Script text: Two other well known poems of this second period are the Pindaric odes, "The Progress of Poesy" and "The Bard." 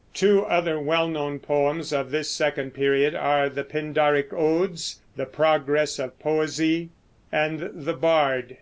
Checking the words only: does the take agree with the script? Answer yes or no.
yes